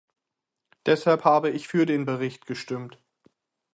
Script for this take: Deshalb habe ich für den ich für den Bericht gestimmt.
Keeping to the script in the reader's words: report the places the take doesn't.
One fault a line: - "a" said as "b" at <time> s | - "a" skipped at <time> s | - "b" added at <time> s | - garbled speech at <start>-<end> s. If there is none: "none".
- "ich für den" skipped at 2.1 s